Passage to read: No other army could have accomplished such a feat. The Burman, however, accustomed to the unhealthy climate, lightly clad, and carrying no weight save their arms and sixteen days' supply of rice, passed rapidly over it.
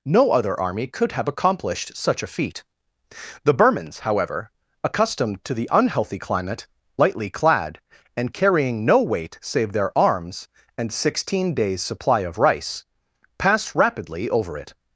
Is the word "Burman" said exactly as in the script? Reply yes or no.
no